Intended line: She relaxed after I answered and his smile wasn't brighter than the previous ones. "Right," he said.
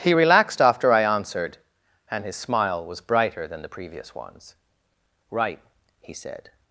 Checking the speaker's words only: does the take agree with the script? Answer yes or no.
no